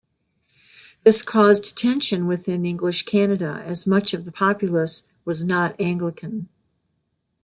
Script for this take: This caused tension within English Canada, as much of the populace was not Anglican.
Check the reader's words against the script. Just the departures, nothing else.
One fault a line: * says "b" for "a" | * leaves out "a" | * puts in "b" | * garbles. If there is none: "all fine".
all fine